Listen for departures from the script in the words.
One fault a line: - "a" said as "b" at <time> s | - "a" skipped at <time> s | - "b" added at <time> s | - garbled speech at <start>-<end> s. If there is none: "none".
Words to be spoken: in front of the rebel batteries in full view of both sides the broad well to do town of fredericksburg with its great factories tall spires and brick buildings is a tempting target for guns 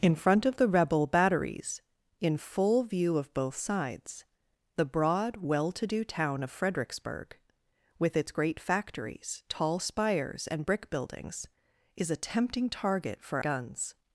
none